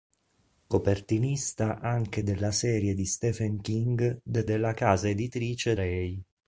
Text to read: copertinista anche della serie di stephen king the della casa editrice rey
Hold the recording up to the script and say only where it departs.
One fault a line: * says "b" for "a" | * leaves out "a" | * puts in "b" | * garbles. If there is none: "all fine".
all fine